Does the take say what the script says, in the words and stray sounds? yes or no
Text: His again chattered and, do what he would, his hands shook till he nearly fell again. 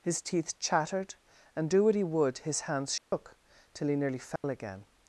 no